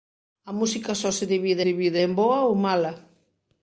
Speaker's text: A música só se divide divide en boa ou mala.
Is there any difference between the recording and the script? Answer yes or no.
no